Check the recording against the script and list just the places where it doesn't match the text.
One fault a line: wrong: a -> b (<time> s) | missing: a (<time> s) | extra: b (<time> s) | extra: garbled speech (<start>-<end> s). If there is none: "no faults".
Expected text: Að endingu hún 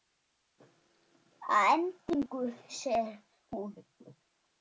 extra: segir (2.8 s)